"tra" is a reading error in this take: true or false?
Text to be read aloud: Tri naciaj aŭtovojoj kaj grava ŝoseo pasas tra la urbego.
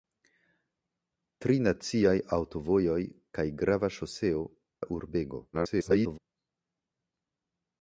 true